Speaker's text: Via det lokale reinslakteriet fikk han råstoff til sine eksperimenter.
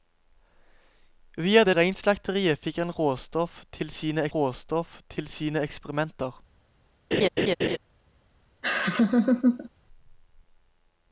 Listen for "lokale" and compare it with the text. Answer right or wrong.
wrong